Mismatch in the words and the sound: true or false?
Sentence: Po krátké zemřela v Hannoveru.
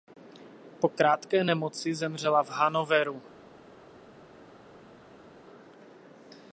true